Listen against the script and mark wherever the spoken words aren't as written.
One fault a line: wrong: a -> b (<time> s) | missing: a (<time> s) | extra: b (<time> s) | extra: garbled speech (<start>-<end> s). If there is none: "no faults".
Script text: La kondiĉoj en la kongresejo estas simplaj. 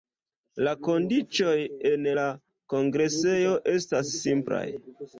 no faults